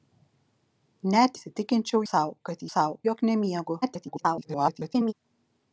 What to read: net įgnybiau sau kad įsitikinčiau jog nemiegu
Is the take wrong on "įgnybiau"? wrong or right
wrong